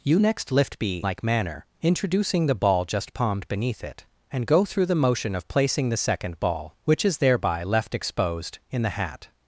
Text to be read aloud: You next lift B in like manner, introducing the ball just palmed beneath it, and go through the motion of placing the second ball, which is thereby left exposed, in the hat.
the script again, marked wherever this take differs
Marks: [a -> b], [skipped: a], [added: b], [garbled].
You next lift B [skipped: in] like manner, introducing the ball just palmed beneath it, and go through the motion of placing the second ball, which is thereby left exposed, in the hat.